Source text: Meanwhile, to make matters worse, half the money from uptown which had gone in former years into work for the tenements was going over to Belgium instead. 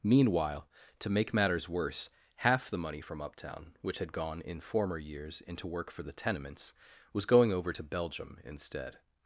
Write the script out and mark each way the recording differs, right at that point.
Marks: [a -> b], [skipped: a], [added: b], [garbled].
Meanwhile, to make matters worse, half the money from uptown which had gone in former years into work for the tenements was going over to Belgium instead.